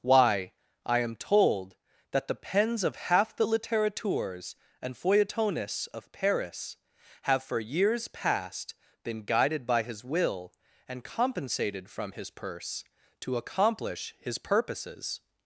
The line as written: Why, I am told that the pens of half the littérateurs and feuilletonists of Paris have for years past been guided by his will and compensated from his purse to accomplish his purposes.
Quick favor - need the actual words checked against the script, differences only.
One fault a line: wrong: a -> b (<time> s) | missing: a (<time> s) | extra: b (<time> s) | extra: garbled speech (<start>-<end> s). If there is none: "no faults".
no faults